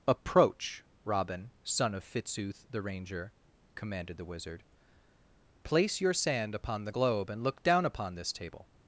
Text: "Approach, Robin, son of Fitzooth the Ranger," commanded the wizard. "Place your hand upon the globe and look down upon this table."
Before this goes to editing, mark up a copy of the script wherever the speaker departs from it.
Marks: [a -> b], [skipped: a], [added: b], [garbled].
"Approach, Robin, son of Fitzooth the Ranger," commanded the wizard. "Place your [hand -> sand] upon the globe and look down upon this table."